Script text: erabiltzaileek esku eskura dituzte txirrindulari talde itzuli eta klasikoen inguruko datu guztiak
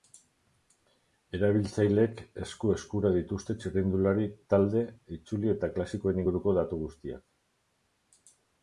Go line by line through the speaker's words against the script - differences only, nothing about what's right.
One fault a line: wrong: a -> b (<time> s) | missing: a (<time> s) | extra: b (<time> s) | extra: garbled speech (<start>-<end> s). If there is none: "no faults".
no faults